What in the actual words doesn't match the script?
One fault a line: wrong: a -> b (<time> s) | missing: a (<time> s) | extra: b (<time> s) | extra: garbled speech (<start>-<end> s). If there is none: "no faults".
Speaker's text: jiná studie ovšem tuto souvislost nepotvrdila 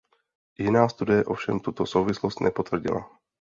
no faults